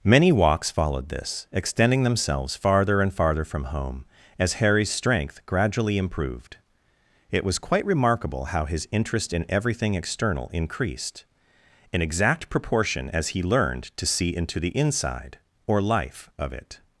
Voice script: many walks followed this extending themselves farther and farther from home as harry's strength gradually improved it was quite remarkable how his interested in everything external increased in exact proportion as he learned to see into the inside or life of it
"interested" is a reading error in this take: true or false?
true